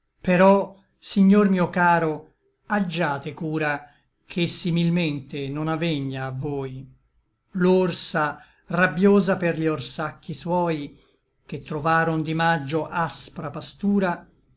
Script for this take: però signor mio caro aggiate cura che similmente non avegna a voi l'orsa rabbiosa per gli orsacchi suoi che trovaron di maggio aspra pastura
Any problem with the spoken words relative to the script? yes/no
no